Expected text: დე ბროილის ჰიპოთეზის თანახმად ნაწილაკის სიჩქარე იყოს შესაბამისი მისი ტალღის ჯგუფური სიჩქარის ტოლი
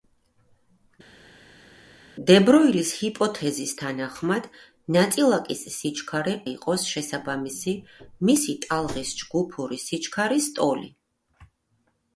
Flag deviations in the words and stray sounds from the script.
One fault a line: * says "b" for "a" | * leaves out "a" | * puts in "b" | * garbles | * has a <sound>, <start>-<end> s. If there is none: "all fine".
all fine